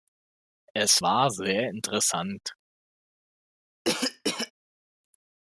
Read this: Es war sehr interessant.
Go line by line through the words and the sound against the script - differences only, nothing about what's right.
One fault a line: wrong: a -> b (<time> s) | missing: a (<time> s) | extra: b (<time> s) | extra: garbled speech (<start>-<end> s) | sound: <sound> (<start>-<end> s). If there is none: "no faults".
sound: cough (3.8-4.5 s)